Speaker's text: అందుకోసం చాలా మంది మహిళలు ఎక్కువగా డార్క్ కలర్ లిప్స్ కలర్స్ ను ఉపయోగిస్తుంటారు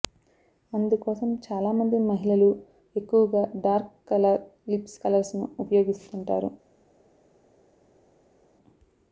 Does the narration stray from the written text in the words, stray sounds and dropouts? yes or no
no